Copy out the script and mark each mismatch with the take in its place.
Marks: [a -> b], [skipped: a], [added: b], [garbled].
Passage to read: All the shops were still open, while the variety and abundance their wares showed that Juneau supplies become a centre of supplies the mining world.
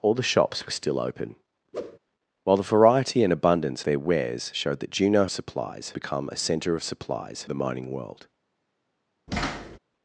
All the shops were still open, while the variety and abundance their wares showed that Juneau supplies become a centre of supplies the mining world.